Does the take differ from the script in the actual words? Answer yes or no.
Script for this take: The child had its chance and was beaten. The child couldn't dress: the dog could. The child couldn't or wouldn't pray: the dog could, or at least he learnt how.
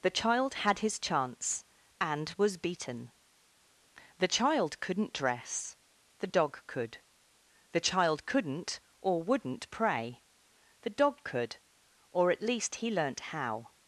yes